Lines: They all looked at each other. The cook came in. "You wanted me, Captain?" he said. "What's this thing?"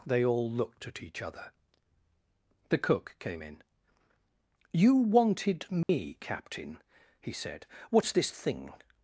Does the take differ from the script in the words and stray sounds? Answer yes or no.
yes